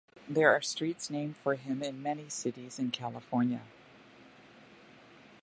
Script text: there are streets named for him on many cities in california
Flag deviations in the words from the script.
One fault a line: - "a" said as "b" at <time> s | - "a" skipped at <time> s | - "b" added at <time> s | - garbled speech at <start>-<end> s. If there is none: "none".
- "on" said as "in" at 1.8 s